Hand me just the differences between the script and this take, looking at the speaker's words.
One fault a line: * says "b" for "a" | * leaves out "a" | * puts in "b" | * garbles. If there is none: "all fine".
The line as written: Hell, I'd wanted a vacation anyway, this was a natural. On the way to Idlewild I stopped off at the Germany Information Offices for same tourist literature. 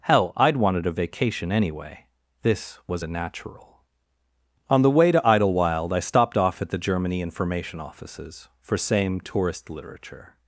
all fine